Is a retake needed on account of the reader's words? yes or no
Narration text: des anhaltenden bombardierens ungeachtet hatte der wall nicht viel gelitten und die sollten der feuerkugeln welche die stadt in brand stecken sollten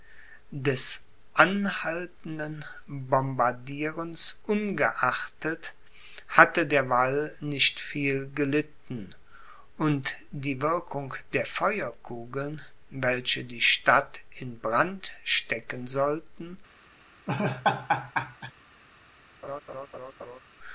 yes